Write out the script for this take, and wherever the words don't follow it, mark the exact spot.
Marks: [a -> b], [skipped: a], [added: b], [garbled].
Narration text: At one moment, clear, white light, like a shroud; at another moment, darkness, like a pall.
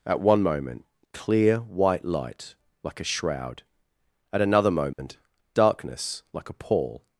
At one moment, clear, white light, like a shroud; at another moment, darkness, like a pall.